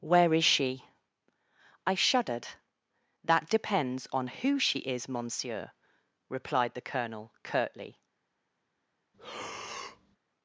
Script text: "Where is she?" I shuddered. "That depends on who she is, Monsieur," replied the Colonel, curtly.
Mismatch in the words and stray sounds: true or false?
true